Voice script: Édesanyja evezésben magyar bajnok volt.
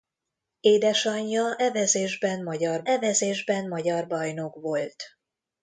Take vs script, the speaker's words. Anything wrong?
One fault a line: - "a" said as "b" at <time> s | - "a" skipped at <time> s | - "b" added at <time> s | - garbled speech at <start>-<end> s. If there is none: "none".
- "evezésben magyar" added at 2.8 s